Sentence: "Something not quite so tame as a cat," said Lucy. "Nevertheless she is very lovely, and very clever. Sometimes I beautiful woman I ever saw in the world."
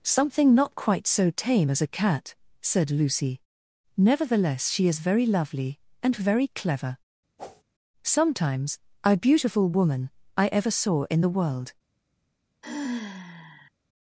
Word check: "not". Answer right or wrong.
right